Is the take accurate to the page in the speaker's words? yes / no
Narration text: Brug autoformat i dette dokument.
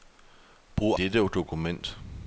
no